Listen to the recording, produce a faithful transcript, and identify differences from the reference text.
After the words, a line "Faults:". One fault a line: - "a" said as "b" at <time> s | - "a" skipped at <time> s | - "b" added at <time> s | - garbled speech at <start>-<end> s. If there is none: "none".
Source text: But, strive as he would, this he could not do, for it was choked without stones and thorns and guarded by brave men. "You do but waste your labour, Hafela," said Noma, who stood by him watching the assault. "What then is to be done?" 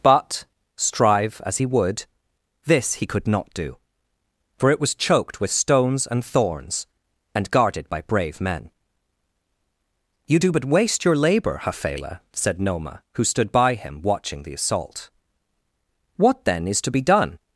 But, strive as he would, this he could not do, for it was choked with stones and thorns and guarded by brave men. "You do but waste your labour, Hafela," said Noma, who stood by him watching the assault. "What then is to be done?"
Faults:
- "without" said as "with" at 5.4 s